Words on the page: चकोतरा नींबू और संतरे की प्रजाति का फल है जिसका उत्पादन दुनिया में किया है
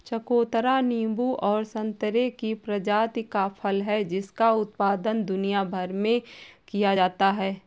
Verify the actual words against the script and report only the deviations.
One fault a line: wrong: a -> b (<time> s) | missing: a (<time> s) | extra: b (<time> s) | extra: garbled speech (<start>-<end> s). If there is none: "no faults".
extra: भर (5.7 s)
extra: जाता (6.9 s)